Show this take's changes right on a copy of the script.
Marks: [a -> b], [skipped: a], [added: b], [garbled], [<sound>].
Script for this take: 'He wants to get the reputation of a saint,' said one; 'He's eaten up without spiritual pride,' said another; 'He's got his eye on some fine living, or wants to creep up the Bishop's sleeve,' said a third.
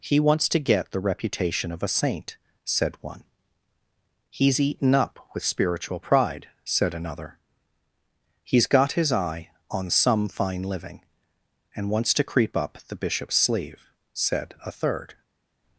'He wants to get the reputation of a saint,' said one; 'He's eaten up [without -> with] spiritual pride,' said another; 'He's got his eye on some fine living, [or -> and] wants to creep up the Bishop's sleeve,' said a third.